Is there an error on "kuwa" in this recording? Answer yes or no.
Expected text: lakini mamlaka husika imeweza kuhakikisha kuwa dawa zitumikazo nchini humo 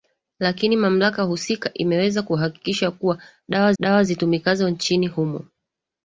no